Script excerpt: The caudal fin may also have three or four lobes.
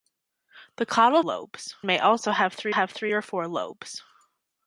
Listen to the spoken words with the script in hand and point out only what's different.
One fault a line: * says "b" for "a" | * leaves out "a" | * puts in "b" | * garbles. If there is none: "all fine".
* says "lobes" for "fin"
* puts in "have three"